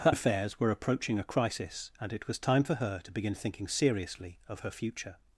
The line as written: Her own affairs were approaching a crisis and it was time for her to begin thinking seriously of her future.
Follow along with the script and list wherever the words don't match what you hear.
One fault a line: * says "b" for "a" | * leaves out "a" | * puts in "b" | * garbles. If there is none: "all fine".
* leaves out "own"